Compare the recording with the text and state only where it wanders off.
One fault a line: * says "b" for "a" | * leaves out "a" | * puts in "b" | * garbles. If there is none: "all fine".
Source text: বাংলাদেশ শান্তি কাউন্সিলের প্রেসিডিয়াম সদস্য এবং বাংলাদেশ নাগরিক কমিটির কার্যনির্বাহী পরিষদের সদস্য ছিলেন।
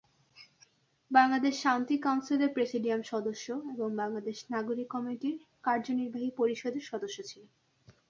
all fine